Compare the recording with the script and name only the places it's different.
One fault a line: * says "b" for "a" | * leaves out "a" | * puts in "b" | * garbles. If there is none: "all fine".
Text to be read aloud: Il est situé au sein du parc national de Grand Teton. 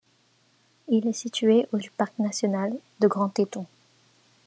* leaves out "sein"